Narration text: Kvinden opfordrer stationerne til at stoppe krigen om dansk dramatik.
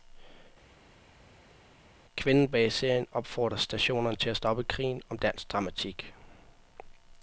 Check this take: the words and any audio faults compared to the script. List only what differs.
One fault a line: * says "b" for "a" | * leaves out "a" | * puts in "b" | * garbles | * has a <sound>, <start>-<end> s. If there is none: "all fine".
* puts in "bag serien"